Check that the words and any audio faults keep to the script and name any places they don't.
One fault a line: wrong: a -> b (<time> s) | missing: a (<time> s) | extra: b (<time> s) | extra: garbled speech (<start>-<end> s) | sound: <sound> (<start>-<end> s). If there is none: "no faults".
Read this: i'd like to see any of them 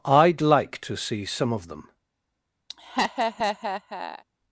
wrong: any -> some (1.2 s)
sound: laugh (2.7-4.2 s)